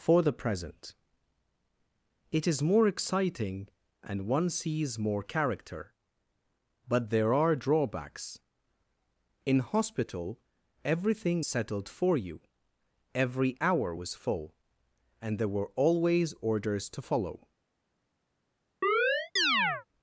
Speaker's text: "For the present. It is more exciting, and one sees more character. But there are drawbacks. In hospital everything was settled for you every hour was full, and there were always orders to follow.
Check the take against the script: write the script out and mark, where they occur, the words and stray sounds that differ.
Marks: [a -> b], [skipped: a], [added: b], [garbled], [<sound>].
"For the present. It is more exciting, and one sees more character. But there are drawbacks. In hospital everything [skipped: was] settled for you every hour was full, and there were always orders to follow. [chirp]